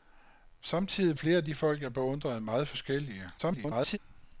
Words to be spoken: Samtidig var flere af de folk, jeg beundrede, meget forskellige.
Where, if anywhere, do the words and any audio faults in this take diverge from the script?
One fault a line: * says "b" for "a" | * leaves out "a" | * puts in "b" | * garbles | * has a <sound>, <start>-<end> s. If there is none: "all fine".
* leaves out "var"
* garbles